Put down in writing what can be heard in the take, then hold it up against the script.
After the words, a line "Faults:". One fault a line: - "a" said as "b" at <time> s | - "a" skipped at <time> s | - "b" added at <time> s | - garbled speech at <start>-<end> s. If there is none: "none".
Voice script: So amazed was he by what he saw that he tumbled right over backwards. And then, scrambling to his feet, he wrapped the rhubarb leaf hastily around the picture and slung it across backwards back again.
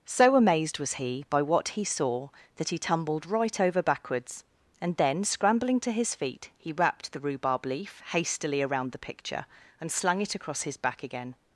So amazed was he by what he saw that he tumbled right over backwards. And then, scrambling to his feet, he wrapped the rhubarb leaf hastily around the picture and slung it across his back again.
Faults:
- "backwards" said as "his" at 10.6 s